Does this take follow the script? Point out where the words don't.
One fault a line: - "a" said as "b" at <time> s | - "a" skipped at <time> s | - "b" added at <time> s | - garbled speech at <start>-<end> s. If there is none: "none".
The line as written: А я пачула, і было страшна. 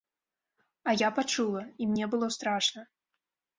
- "мне" added at 1.9 s